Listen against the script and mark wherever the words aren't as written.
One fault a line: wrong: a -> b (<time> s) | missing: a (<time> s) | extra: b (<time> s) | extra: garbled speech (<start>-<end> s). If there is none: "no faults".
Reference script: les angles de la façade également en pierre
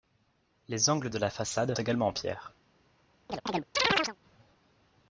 no faults